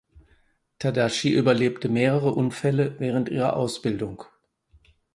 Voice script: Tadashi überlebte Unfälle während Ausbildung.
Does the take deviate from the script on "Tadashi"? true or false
false